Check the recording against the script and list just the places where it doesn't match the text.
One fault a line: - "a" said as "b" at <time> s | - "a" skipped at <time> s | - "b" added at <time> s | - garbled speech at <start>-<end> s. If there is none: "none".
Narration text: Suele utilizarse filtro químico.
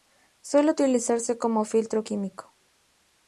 - "como" added at 1.4 s